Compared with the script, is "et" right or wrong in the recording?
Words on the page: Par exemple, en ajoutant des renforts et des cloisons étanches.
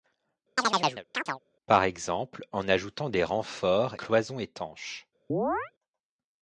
wrong